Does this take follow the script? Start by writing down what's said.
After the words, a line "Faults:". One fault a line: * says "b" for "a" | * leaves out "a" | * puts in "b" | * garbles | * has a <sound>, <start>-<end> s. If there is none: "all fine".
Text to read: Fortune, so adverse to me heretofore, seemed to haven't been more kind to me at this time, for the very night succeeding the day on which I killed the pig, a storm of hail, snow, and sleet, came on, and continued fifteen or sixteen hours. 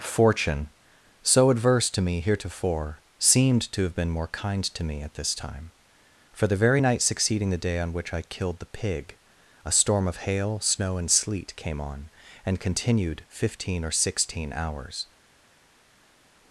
Fortune, so adverse to me heretofore, seemed to have been more kind to me at this time, for the very night succeeding the day on which I killed the pig, a storm of hail, snow, and sleet, came on, and continued fifteen or sixteen hours.
Faults:
* says "have" for "haven't"